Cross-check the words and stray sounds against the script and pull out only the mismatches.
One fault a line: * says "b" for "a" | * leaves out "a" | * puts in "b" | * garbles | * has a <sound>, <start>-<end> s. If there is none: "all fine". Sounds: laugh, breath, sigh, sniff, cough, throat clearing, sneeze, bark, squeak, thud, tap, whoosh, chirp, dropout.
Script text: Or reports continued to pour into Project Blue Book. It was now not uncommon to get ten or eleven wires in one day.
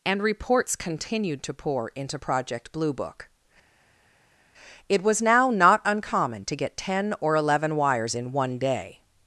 * says "And" for "Or"